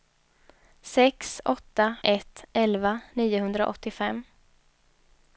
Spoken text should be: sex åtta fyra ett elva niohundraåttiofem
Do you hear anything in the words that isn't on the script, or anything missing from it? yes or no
yes